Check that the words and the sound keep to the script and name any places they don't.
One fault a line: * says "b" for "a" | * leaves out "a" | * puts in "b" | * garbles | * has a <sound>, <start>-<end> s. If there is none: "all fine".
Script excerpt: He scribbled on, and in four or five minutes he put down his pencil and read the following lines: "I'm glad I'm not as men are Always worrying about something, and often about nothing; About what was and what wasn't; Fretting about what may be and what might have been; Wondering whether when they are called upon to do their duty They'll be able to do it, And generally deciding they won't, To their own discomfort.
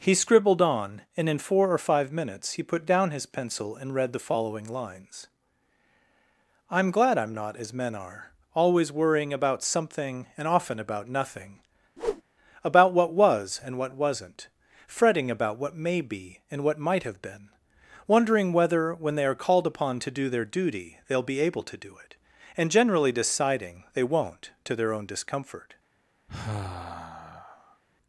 * has a whoosh, 12.0-12.2 s
* has a sigh, 26.3-27.8 s